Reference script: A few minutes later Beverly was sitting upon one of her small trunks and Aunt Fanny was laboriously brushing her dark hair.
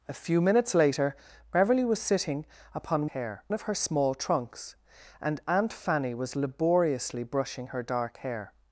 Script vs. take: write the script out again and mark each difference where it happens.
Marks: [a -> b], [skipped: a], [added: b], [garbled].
A few minutes later Beverly was sitting upon [one -> hair] of her small trunks and Aunt Fanny was laboriously brushing her dark hair.